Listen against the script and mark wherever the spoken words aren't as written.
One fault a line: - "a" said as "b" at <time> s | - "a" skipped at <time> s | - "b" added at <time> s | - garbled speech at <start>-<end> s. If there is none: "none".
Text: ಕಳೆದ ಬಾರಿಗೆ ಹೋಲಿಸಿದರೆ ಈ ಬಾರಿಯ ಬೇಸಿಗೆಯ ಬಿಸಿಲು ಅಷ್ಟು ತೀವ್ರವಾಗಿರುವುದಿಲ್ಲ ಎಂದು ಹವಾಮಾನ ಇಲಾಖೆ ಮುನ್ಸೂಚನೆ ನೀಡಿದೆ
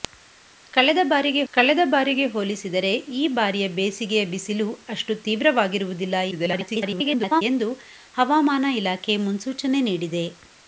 - "ಕಳೆದ ಬಾರಿಗೆ" added at 1.5 s
- garbled speech at 6.3-7.4 s